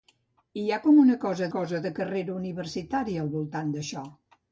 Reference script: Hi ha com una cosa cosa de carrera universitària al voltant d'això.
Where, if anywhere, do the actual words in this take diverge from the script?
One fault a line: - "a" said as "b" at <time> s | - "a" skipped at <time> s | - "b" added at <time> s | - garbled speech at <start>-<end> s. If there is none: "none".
none